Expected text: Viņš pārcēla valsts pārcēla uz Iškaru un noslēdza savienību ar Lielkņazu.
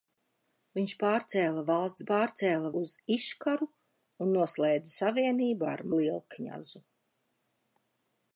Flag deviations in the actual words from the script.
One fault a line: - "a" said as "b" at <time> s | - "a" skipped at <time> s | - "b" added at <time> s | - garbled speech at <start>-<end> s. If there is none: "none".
none